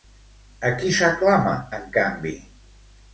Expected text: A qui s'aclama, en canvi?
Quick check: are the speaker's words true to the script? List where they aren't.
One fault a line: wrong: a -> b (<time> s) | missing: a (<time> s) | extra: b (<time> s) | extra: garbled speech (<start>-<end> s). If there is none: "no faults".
no faults